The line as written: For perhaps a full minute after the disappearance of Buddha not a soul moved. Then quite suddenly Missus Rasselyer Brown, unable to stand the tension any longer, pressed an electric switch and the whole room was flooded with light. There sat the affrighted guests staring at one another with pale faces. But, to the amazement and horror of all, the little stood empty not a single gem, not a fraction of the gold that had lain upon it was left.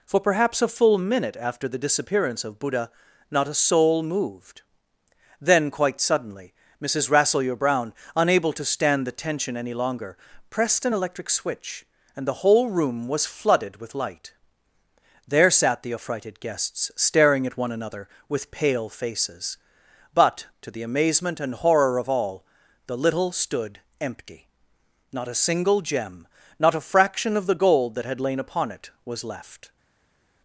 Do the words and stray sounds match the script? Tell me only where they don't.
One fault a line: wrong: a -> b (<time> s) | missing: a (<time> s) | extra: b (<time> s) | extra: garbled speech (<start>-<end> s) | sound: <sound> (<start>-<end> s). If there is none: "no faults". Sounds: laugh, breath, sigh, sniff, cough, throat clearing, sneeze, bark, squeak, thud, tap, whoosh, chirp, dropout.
no faults